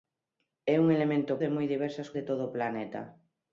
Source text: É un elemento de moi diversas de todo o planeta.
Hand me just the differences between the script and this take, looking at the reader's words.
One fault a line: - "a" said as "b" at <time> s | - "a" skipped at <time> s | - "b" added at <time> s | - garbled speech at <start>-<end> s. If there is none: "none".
none